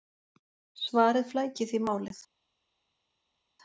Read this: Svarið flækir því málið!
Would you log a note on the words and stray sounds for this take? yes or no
no